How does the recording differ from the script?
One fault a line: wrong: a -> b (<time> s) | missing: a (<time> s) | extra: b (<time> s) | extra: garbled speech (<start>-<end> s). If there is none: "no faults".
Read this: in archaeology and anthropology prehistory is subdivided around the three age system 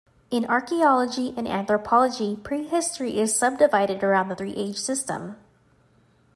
no faults